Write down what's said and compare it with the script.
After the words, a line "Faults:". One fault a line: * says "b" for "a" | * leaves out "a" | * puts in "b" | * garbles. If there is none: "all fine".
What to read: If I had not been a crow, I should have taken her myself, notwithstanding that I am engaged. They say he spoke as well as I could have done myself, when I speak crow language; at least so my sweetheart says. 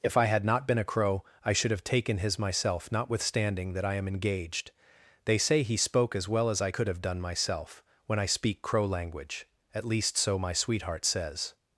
If I had not been a crow, I should have taken his myself, notwithstanding that I am engaged. They say he spoke as well as I could have done myself, when I speak crow language; at least so my sweetheart says.
Faults:
* says "his" for "her"